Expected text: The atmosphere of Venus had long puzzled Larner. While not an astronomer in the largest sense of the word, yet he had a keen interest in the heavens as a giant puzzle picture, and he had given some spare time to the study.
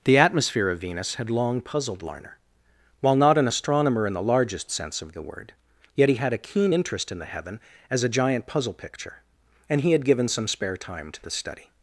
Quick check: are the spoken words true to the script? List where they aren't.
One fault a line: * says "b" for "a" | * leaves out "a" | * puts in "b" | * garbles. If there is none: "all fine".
* says "heaven" for "heavens"